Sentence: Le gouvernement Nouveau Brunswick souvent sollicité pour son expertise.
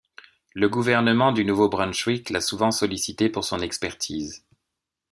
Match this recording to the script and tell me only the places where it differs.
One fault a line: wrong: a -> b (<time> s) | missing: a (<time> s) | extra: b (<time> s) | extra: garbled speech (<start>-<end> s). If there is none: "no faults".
extra: du (1.3 s)
extra: l'a (2.3 s)